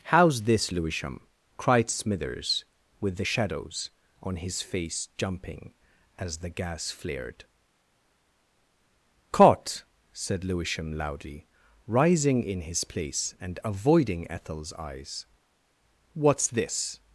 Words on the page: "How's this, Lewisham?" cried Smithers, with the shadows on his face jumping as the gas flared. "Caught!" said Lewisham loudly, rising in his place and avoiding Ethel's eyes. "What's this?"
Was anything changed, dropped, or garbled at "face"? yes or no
no